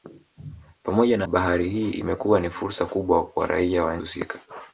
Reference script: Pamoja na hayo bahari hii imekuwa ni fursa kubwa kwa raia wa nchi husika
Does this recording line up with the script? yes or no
no